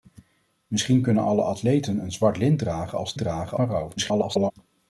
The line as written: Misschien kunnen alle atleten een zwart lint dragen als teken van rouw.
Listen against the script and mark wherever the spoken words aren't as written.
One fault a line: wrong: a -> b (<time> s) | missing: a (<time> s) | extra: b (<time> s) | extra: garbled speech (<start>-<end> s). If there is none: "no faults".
wrong: teken -> dragen (3.2 s)
extra: garbled speech (4.0-4.5 s)